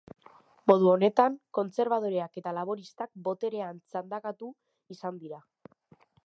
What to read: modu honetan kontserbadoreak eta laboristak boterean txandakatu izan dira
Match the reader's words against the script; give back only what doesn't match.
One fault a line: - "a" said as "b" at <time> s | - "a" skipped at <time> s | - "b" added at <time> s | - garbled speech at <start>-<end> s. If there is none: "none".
none